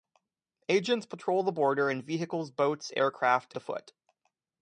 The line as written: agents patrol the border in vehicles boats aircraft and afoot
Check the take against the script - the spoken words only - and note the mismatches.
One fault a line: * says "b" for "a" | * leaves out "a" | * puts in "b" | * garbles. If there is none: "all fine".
* leaves out "and"